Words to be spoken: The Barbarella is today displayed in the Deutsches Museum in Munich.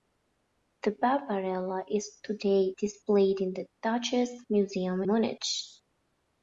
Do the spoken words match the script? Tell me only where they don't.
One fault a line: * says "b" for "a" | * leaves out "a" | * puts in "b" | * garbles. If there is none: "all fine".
* leaves out "in"